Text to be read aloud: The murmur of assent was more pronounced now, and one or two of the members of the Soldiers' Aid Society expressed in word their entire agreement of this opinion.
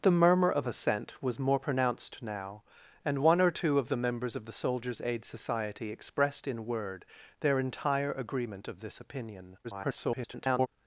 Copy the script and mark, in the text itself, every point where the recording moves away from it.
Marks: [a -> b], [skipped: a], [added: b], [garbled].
The murmur of assent was more pronounced now, and one or two of the members of the Soldiers' Aid Society expressed in word their entire agreement of this opinion. [garbled]